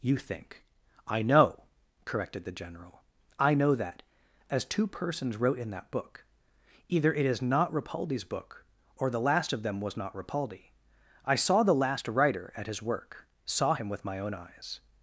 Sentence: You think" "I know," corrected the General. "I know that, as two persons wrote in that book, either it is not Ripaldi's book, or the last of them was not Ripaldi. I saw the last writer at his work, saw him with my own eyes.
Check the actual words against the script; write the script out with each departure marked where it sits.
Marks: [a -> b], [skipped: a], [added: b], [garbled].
You think" "I know," corrected the General. "I know that, as two persons wrote in that book, either it is not Ripaldi's book, or the last of them was not Ripaldi. I saw the last writer at his work, saw him with my own eyes.